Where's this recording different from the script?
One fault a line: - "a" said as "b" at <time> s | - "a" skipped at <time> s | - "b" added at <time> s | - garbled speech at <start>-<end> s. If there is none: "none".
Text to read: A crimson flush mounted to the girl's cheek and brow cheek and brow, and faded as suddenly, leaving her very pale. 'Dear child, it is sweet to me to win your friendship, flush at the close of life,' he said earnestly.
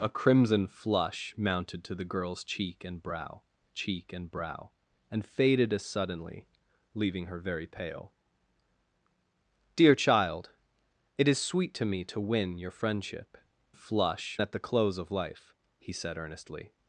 none